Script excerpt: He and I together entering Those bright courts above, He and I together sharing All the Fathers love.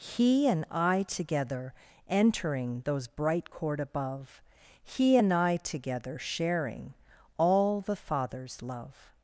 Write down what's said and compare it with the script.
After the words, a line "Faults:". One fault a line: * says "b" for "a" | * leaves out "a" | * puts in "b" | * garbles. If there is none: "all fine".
He and I together entering Those bright court above, He and I together sharing All the Fathers love.
Faults:
* says "court" for "courts"